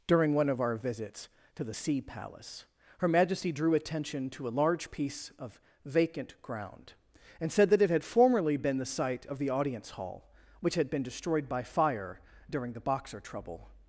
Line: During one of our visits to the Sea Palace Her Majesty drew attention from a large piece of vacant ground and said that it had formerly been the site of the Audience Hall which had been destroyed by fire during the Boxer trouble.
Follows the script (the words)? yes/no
no